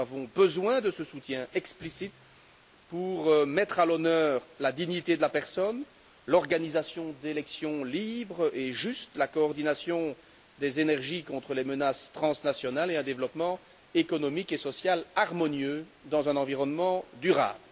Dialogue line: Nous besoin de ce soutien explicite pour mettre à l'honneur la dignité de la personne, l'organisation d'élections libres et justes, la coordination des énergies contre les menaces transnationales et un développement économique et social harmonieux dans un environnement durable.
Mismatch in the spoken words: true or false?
true